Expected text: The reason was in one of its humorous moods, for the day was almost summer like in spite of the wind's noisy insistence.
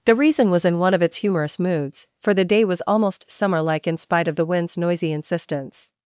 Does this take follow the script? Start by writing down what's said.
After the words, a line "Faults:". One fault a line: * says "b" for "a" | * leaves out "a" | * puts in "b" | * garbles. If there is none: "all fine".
The reason was in one of its humorous moods, for the day was almost summer like in spite of the wind's noisy insistence.
Faults:
all fine